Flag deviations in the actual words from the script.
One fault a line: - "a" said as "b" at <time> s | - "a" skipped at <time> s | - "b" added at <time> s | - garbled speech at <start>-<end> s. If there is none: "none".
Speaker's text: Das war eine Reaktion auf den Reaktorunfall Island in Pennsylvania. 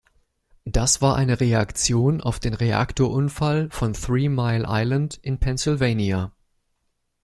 - "von Three Mile" added at 3.7 s